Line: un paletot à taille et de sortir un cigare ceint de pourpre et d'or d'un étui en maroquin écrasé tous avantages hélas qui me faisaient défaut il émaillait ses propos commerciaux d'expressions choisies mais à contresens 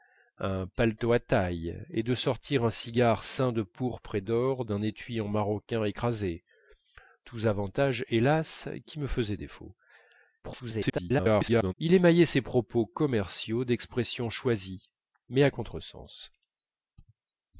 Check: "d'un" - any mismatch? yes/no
no